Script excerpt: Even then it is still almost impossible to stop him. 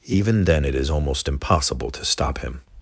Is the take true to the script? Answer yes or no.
no